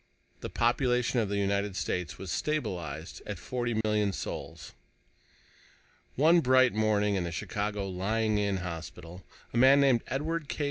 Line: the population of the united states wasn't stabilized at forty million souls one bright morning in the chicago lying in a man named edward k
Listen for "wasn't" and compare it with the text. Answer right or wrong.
wrong